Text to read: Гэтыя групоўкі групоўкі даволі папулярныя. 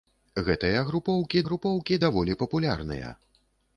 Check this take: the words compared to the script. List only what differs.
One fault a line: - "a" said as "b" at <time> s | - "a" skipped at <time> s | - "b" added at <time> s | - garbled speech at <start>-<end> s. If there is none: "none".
none